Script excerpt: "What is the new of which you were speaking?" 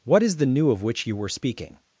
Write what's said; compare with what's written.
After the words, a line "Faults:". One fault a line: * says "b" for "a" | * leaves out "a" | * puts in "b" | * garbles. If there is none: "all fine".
"What is the new of which you were speaking?"
Faults:
all fine